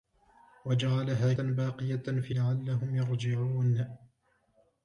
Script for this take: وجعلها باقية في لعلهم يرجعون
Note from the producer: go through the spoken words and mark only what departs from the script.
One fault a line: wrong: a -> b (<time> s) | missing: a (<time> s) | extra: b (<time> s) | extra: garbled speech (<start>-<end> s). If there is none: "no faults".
no faults